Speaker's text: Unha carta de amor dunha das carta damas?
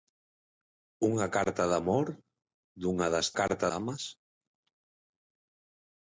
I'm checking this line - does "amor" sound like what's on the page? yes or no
yes